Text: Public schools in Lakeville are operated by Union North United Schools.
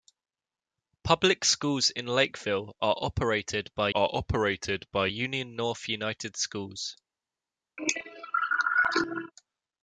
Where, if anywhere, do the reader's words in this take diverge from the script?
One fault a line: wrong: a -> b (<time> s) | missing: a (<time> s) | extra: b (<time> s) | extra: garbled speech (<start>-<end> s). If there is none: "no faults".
extra: are operated by (3.9 s)